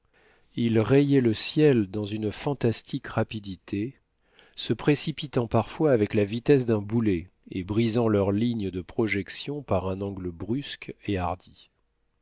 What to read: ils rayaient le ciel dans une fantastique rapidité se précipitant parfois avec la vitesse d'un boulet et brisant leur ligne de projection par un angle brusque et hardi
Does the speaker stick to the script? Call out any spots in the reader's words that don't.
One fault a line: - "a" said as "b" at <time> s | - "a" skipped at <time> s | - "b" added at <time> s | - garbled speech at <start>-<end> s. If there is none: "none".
none